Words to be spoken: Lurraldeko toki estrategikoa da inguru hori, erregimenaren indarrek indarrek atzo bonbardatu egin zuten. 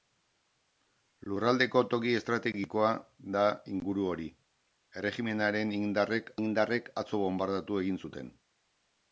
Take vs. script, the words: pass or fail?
pass